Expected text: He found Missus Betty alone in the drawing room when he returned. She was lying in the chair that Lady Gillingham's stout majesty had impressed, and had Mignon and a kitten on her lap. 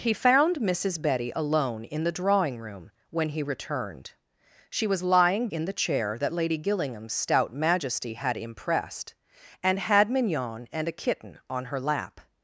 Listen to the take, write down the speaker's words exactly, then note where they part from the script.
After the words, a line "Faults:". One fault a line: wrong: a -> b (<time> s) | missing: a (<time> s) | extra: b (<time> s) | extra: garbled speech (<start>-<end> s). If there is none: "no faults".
He found Missus Betty alone in the drawing room when he returned. She was lying in the chair that Lady Gillingham's stout majesty had impressed, and had Mignon and a kitten on her lap.
Faults:
no faults